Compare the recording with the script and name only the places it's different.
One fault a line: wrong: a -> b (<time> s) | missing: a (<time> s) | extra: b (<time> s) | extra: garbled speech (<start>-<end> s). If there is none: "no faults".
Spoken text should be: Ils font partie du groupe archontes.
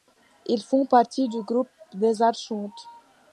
extra: des (1.9 s)